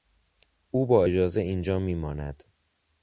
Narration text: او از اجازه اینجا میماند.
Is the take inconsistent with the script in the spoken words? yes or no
yes